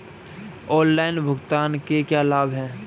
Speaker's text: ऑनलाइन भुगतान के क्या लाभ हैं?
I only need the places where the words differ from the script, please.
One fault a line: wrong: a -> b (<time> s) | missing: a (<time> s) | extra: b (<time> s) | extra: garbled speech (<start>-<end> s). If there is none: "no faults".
no faults